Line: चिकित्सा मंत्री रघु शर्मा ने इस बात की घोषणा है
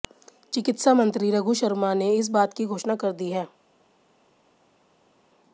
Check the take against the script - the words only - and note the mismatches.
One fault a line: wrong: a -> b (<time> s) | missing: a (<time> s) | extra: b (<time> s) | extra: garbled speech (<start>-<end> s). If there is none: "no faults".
extra: कर दी (3.0 s)